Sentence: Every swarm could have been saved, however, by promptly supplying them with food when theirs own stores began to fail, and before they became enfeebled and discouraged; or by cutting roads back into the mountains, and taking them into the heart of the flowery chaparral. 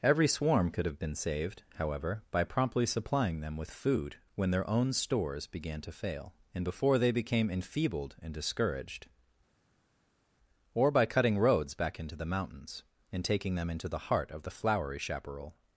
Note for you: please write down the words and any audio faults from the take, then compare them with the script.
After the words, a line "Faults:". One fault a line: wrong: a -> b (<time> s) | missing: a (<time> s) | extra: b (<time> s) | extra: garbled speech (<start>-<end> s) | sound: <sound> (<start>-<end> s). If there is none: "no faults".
Every swarm could have been saved, however, by promptly supplying them with food when their own stores began to fail, and before they became enfeebled and discouraged; or by cutting roads back into the mountains, and taking them into the heart of the flowery chaparral.
Faults:
wrong: theirs -> their (4.5 s)